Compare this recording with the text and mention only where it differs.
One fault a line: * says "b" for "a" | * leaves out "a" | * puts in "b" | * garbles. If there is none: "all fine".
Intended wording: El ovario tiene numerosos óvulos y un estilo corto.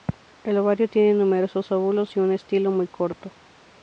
* puts in "muy"